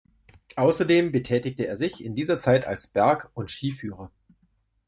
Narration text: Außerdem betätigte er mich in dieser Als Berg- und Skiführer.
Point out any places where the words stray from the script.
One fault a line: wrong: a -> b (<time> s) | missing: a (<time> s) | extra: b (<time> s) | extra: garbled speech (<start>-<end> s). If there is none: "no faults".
wrong: mich -> sich (1.7 s)
extra: Zeit (2.4 s)